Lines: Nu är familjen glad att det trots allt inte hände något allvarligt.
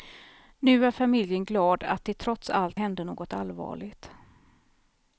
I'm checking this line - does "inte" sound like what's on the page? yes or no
no